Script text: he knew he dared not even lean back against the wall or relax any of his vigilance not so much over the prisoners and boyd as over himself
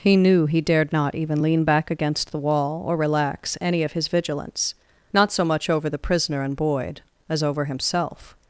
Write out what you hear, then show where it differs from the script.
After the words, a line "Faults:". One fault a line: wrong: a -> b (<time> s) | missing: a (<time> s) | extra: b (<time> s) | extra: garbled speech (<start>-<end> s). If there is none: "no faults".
he knew he dared not even lean back against the wall or relax any of his vigilance not so much over the prisoner and boyd as over himself
Faults:
wrong: prisoners -> prisoner (6.0 s)